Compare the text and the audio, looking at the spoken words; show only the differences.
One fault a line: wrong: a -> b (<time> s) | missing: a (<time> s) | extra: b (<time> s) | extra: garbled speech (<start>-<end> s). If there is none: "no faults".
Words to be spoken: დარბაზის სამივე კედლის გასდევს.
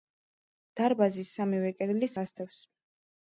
no faults